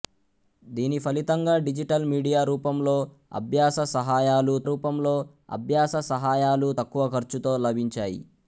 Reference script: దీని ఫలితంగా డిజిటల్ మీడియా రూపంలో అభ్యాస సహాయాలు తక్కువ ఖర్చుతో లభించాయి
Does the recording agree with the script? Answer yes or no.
no